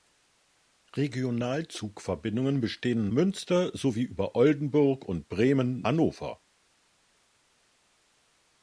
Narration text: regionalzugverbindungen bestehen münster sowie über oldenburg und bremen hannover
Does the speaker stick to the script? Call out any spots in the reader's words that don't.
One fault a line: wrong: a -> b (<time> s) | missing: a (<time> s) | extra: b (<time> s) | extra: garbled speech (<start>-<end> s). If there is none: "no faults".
no faults